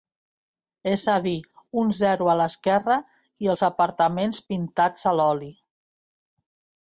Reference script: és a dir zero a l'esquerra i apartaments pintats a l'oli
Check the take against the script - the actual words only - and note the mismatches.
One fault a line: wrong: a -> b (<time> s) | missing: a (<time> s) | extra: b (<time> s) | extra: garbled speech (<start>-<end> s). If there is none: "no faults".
extra: un (1.8 s)
extra: els (3.5 s)